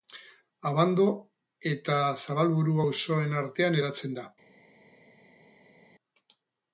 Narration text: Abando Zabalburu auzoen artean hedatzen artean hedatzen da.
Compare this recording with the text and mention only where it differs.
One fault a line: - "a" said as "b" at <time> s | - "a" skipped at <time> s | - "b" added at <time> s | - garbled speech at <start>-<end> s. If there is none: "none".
- "eta" added at 1.7 s
- "artean hedatzen" skipped at 4.2 s